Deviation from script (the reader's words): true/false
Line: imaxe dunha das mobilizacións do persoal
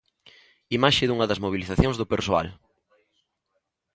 false